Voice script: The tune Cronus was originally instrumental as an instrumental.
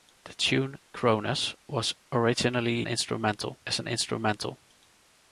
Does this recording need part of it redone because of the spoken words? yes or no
no